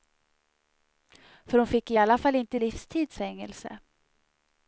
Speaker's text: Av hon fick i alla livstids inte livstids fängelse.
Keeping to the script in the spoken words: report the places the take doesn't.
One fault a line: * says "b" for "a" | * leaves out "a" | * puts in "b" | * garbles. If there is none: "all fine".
* says "För" for "Av"
* says "fall" for "livstids"